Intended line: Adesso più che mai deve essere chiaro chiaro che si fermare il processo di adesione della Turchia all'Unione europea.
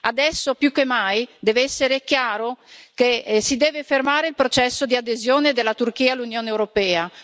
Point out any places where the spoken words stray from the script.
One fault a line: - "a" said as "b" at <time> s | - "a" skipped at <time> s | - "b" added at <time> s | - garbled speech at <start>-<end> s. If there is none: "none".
- "chiaro" skipped at 2.6 s
- "deve" added at 3.5 s